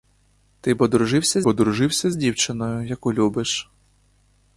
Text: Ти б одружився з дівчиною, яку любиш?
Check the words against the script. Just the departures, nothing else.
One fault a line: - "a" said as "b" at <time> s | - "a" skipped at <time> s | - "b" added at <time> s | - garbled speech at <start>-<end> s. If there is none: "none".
- "одружився" added at 1.5 s